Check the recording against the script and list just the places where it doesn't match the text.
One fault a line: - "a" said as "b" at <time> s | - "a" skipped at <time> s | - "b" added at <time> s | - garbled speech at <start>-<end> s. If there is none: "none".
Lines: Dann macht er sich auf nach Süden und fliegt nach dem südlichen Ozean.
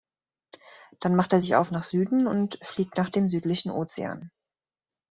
none